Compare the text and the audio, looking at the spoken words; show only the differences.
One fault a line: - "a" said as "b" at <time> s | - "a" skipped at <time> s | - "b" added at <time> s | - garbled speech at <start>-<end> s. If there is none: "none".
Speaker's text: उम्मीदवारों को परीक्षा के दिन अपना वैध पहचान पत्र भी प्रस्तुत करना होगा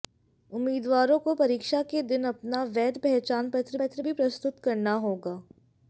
- "पत्र" added at 3.8 s